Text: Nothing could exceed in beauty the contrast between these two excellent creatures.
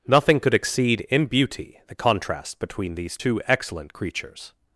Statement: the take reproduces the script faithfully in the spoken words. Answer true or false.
true